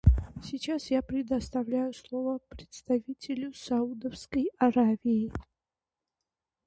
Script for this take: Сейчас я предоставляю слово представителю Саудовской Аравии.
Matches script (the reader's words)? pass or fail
pass